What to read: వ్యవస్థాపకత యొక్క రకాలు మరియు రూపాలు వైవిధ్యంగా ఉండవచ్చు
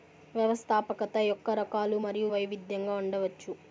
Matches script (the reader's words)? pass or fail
fail